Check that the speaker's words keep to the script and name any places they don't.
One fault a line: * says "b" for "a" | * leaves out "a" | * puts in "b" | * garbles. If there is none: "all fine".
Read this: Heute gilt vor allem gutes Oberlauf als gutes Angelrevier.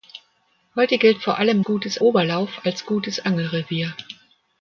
all fine